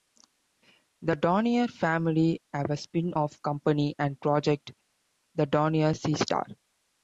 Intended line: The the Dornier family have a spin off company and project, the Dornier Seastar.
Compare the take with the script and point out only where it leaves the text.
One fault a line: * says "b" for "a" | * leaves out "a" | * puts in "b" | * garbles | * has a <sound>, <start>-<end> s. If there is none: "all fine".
* leaves out "the"